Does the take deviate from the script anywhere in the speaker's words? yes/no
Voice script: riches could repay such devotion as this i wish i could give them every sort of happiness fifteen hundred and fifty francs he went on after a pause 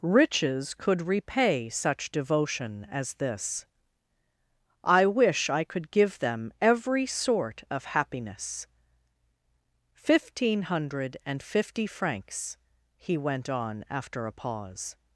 no